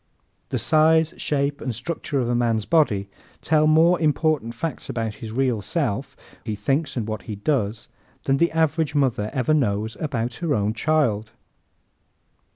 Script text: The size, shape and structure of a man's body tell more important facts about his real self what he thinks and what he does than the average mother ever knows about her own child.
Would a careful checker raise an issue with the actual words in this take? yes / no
yes